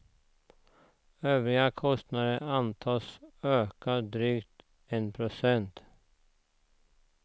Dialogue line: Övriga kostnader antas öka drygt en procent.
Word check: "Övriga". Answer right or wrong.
right